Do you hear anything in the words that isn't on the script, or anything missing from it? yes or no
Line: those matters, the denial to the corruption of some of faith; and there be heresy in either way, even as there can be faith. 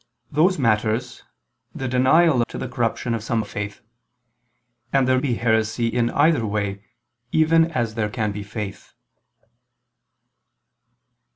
no